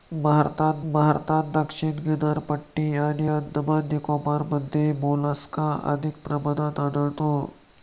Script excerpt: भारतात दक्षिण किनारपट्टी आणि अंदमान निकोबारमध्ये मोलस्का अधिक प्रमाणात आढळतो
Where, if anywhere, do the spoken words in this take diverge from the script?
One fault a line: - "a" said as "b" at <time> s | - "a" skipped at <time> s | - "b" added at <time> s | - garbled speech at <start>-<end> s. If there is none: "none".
- "भारतात" added at 0.9 s